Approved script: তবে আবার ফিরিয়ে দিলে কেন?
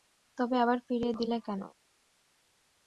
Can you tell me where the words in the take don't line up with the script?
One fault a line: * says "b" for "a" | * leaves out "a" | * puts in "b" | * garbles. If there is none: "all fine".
all fine